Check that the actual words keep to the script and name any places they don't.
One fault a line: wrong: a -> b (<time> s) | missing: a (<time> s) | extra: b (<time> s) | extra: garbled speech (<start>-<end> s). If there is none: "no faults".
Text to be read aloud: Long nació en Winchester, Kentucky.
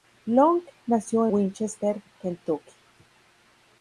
missing: en (1.3 s)